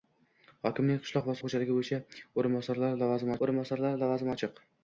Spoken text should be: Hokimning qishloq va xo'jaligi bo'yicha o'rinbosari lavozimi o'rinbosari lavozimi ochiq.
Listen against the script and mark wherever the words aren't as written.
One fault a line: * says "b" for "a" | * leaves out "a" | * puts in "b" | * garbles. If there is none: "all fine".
all fine